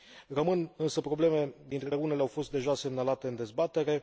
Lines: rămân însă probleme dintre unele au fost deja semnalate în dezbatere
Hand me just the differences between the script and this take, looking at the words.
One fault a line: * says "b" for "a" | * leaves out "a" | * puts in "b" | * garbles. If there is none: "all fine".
all fine